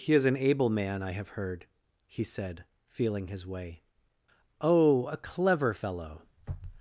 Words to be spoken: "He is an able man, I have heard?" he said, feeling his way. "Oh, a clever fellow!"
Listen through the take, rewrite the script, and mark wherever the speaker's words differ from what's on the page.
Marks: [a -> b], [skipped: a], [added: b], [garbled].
"He is an able man, I have heard?" he said, feeling his way. "Oh, a clever fellow!"